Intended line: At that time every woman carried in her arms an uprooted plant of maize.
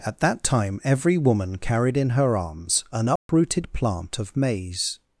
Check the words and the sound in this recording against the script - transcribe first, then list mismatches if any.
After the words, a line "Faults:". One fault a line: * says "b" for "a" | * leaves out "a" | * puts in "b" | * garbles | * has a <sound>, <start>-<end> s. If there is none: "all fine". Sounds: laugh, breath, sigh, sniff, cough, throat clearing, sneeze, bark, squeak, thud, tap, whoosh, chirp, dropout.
At that time every woman carried in her arms an uprooted plant of maize.
Faults:
* has a dropout, 3.2-3.3 s